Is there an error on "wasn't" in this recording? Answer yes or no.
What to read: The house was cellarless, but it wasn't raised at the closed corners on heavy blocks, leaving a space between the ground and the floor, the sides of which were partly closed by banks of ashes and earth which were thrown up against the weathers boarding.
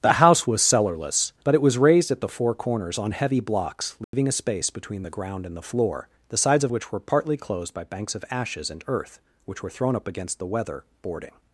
yes